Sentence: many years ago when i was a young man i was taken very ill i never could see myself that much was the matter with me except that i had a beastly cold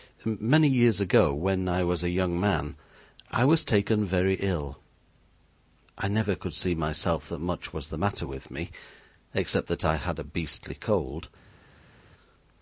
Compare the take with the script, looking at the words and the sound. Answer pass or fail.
pass